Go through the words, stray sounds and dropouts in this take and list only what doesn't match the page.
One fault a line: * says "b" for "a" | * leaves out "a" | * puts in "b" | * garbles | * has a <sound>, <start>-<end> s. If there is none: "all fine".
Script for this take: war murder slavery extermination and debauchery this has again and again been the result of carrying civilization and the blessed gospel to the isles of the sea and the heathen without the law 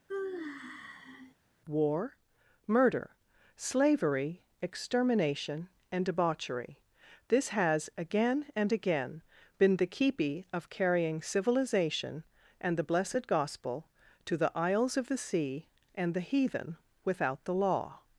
* has a sigh, 0.1-1.3 s
* says "keepy" for "result"